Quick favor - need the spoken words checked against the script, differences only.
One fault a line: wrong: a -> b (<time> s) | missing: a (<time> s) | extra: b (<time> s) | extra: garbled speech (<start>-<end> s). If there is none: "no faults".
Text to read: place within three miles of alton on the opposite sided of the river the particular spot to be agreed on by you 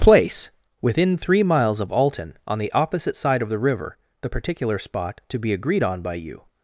wrong: sided -> side (3.1 s)